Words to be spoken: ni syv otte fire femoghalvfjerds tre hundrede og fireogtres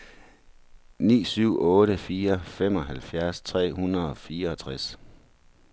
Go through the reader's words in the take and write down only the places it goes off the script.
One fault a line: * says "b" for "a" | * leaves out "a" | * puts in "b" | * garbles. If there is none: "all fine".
all fine